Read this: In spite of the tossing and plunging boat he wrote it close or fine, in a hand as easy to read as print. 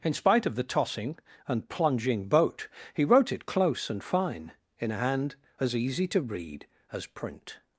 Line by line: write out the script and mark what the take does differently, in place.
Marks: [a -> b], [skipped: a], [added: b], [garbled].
In spite of the tossing and plunging boat he wrote it close [or -> and] fine, in a hand as easy to read as print.